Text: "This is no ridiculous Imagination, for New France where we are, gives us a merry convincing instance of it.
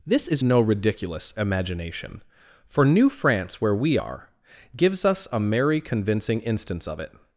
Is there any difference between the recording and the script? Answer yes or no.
no